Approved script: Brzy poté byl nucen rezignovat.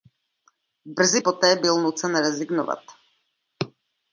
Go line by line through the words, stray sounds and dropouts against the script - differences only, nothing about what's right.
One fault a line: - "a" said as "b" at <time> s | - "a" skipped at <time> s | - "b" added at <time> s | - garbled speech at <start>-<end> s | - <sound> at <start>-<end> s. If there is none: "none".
none